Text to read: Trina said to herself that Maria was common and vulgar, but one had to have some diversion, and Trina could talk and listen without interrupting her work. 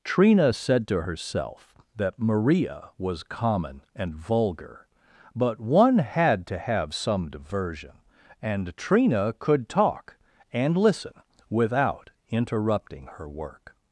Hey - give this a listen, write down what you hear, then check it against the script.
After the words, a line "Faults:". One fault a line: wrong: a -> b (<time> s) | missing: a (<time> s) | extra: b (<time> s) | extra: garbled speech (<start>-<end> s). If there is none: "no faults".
Trina said to herself that Maria was common and vulgar, but one had to have some diversion, and Trina could talk and listen without interrupting her work.
Faults:
no faults